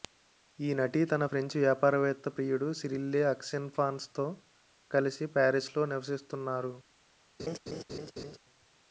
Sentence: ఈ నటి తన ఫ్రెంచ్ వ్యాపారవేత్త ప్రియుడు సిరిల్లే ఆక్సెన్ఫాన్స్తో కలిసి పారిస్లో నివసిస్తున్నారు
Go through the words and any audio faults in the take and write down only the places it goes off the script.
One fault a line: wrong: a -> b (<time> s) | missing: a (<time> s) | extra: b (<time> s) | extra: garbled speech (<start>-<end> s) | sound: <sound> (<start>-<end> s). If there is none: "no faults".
sound: laugh (7.4-8.4 s)